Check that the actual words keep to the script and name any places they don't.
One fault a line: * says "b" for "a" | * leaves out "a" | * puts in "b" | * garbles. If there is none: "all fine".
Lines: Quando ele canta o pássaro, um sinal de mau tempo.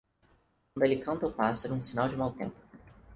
all fine